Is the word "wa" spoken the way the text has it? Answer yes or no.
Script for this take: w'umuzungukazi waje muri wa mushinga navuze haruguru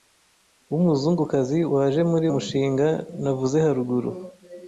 no